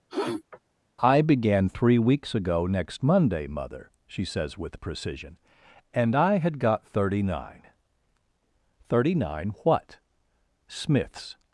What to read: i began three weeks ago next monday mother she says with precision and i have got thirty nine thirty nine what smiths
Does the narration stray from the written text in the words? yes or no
yes